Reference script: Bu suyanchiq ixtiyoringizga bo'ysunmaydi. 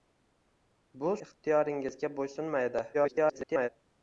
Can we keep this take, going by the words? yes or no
no